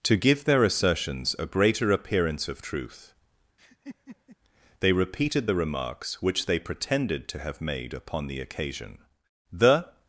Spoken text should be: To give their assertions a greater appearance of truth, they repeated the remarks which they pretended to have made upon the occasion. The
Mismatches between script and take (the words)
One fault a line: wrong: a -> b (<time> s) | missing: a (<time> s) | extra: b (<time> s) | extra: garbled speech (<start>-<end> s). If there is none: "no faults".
no faults